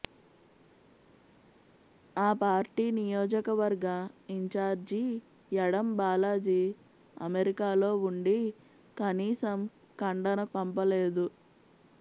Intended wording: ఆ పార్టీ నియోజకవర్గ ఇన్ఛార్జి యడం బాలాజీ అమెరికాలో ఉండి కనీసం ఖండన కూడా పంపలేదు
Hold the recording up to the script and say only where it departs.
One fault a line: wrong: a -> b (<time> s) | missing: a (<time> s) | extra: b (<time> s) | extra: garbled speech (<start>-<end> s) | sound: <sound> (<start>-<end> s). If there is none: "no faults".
missing: కూడా (10.4 s)